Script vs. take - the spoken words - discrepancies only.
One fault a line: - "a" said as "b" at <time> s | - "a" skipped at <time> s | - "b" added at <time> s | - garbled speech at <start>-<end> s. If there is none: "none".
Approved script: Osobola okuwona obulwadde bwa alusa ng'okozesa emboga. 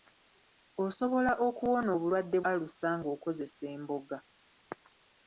- "bwa" skipped at 2.4 s